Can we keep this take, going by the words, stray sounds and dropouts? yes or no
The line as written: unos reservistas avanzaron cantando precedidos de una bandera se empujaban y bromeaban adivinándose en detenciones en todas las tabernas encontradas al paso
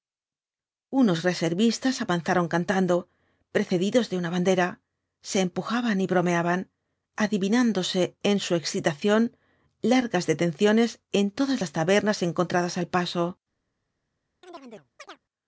no